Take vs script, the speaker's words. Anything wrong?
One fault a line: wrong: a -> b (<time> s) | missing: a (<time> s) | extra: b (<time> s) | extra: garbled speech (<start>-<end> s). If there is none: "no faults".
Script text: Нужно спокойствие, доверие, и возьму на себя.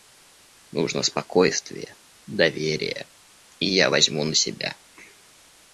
extra: я (3.7 s)